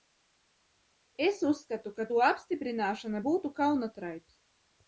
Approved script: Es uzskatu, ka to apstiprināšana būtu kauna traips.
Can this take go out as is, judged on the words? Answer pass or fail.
pass